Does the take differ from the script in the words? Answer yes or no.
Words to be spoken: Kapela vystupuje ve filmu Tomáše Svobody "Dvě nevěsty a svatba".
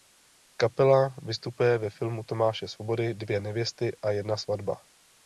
yes